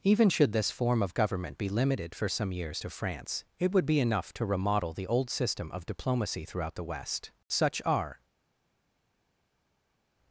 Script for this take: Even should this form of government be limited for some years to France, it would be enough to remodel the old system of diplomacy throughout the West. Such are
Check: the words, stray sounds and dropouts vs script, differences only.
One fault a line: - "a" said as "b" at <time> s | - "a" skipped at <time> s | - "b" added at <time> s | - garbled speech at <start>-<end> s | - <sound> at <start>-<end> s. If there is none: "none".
none